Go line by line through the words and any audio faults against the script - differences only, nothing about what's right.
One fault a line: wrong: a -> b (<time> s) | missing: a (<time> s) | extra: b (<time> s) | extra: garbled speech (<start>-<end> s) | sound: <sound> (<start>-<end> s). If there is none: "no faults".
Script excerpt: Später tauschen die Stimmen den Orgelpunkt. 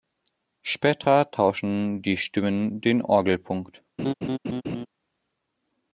sound: laugh (4.0-4.9 s)